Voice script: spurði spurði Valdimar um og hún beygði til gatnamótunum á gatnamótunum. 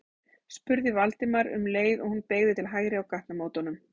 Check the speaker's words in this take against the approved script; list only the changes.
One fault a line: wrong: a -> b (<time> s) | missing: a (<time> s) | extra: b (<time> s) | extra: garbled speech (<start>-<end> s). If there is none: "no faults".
missing: spurði (0.9 s)
extra: leið (1.8 s)
wrong: gatnamótunum -> hægri (2.7 s)